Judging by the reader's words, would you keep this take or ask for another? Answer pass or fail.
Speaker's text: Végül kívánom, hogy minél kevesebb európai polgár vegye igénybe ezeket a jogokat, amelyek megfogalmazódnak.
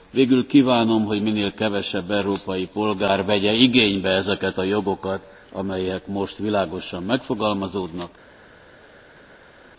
fail